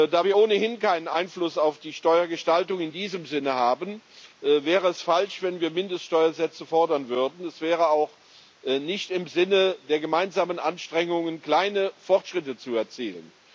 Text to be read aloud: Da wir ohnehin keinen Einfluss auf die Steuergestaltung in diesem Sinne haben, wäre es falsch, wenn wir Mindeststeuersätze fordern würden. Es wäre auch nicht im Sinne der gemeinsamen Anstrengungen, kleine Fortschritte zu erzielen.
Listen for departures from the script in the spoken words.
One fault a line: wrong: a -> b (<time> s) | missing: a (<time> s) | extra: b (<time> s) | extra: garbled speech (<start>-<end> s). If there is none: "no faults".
no faults